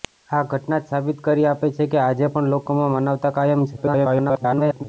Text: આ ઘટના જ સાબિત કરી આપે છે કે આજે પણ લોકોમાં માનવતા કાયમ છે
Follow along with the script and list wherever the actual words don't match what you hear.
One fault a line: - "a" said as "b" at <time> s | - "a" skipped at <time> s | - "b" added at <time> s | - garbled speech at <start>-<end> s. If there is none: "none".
- garbled speech at 3.8-4.8 s